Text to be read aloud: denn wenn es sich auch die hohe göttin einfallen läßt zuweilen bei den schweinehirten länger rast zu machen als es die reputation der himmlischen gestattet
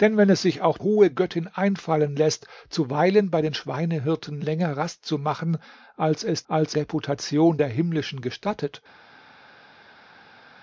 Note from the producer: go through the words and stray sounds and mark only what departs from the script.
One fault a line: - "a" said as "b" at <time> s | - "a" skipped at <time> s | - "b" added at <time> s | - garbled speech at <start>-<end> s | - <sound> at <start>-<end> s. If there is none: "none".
- "die" skipped at 0.8 s
- "die" said as "als" at 6.5 s